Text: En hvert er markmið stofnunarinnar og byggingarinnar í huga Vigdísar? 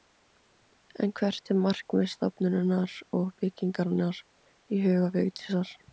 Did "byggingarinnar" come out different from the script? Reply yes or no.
no